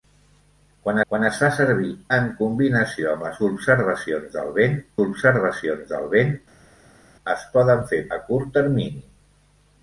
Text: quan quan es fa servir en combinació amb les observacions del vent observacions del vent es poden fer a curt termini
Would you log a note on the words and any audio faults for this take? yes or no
no